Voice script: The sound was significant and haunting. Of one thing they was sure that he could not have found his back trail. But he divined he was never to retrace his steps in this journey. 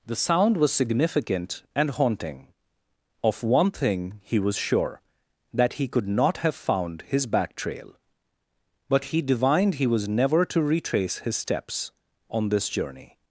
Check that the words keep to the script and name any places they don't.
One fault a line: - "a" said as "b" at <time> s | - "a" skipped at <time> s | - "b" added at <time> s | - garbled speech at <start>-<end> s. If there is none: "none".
- "they" said as "he" at 4.2 s
- "in" said as "on" at 12.3 s